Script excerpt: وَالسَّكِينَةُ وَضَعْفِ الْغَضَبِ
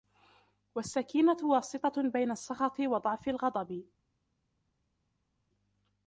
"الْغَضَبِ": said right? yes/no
yes